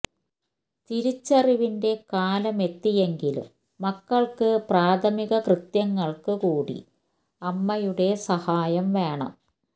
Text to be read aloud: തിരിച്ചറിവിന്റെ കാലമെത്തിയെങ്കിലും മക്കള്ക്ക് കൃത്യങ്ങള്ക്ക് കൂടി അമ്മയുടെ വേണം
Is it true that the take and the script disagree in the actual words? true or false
true